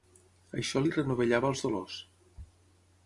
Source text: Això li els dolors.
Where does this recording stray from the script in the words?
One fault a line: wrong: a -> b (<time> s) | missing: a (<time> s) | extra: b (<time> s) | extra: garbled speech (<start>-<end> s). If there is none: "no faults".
extra: renovellava (1.0 s)